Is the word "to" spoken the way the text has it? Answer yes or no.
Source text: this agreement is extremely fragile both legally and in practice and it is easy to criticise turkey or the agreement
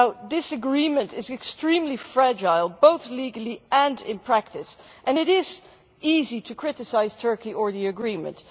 yes